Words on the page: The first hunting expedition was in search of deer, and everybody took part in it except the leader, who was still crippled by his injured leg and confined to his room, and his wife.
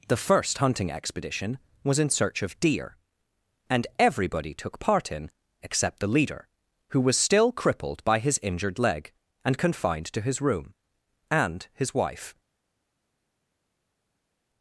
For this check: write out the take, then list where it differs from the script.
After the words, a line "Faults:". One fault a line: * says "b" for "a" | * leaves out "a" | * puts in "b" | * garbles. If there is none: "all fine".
The first hunting expedition was in search of deer, and everybody took part in except the leader, who was still crippled by his injured leg and confined to his room, and his wife.
Faults:
* leaves out "it"